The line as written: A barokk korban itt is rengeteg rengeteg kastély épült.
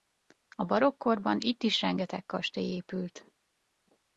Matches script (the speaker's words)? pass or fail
fail